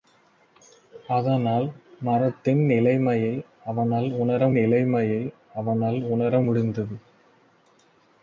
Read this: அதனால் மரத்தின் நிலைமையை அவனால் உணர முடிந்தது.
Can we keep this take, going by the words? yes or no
no